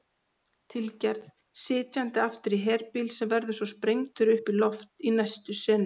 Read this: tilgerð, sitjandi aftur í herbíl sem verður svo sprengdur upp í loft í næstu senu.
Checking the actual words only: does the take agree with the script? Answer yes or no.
yes